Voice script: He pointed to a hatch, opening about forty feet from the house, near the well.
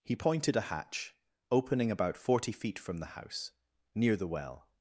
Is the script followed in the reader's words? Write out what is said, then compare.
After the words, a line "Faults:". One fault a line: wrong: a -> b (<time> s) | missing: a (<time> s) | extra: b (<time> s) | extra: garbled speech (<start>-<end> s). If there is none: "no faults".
He pointed a hatch, opening about forty feet from the house, near the well.
Faults:
missing: to (0.6 s)